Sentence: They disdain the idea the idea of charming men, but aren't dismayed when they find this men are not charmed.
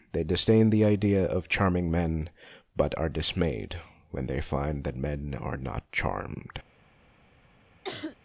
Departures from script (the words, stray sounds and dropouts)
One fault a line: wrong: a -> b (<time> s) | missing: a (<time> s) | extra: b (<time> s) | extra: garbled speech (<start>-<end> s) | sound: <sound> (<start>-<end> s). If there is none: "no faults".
missing: the idea (1.2 s)
wrong: aren't -> are (3.0 s)
wrong: this -> that (4.8 s)
sound: cough (7.8-8.2 s)